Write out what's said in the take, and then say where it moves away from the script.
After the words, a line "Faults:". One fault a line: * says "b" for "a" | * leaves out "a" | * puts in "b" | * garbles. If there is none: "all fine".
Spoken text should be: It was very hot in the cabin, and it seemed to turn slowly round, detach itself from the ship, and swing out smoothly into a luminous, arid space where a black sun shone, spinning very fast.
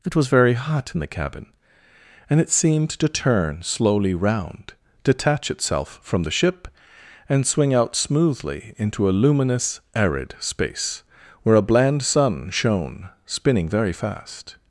It was very hot in the cabin, and it seemed to turn slowly round, detach itself from the ship, and swing out smoothly into a luminous, arid space where a bland sun shone, spinning very fast.
Faults:
* says "bland" for "black"